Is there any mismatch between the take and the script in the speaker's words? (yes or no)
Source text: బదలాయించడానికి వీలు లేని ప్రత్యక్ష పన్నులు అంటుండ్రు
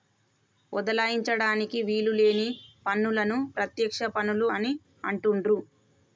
yes